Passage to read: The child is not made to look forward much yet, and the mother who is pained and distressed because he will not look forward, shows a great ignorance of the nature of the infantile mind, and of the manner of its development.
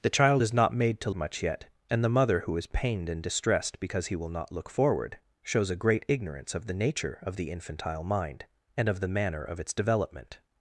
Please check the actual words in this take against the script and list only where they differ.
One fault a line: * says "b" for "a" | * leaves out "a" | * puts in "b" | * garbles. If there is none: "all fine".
* leaves out "look forward"